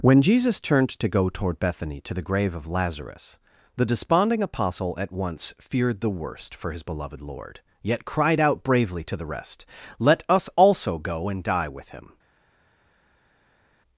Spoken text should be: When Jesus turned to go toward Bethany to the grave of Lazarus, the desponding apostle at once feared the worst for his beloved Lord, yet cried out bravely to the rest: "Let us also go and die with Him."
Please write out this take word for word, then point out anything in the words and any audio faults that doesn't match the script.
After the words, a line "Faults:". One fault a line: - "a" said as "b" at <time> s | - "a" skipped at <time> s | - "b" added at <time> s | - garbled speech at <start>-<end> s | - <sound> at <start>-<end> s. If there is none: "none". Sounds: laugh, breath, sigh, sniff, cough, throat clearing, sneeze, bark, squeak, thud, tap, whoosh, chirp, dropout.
When Jesus turned to go toward Bethany to the grave of Lazarus, the desponding apostle at once feared the worst for his beloved Lord, yet cried out bravely to the rest: "Let us also go and die with Him."
Faults:
none